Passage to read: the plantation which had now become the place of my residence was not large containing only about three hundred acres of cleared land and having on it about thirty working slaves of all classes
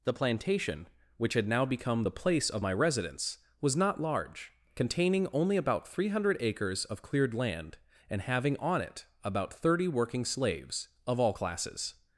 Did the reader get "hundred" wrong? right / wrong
right